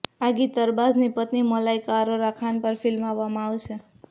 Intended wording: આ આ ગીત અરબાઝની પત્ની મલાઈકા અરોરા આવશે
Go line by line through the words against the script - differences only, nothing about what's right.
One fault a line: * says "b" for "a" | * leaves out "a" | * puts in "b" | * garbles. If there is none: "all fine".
* leaves out "આ"
* puts in "ખાન પર ફિલ્માવવામાં"